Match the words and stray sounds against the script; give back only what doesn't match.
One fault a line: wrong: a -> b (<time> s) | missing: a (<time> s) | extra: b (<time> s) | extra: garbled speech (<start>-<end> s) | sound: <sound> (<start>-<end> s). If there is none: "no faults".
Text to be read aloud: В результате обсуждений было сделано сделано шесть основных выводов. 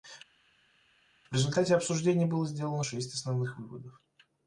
missing: сделано (2.8 s)